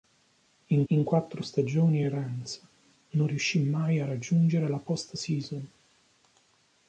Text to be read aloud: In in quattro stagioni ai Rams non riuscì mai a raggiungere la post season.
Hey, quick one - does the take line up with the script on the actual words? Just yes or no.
yes